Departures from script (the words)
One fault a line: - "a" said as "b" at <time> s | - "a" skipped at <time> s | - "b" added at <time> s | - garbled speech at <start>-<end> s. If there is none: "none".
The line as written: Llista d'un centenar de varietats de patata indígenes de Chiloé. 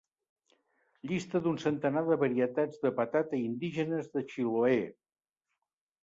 none